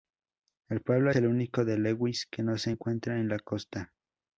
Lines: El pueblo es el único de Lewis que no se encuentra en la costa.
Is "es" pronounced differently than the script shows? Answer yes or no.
yes